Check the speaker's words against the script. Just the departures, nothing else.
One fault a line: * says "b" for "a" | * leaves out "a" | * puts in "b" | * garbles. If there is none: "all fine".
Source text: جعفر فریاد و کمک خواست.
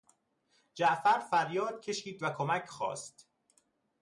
* puts in "کشید"